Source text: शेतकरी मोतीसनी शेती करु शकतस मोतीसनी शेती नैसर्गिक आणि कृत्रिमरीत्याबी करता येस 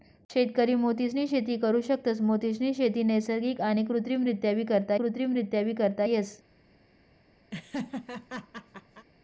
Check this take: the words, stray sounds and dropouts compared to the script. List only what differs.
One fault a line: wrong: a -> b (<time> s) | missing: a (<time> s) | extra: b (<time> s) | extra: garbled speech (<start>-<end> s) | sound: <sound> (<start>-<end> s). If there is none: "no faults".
extra: कृत्रिमरीत्याबी करता (4.9 s)
sound: laugh (7.5-9.1 s)